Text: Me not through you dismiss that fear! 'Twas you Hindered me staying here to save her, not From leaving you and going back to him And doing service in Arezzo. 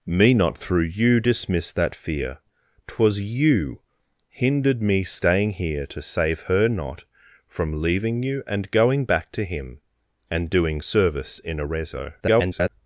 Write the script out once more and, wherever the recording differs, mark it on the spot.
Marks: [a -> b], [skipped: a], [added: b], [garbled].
Me not through you dismiss that fear! 'Twas you Hindered me staying here to save her, not From leaving you and going back to him And doing service in Arezzo. [garbled]